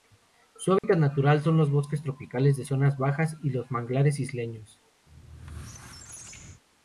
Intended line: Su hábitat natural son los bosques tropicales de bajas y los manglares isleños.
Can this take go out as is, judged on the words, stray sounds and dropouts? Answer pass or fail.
fail